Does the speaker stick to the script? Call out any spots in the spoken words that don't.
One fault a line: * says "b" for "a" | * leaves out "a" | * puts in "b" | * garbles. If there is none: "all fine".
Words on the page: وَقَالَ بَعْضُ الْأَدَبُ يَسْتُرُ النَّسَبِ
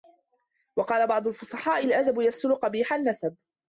* puts in "الْفُصَحَاءِ"
* puts in "قَبِيحَ"